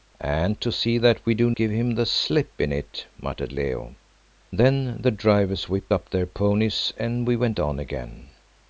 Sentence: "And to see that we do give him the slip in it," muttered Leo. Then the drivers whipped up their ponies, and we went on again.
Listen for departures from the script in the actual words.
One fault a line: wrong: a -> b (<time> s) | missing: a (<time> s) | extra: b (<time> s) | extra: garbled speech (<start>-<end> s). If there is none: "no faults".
no faults